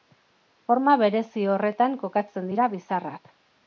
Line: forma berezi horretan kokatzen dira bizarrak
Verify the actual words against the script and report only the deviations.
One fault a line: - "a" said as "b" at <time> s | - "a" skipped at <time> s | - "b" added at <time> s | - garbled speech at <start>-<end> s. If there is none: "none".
none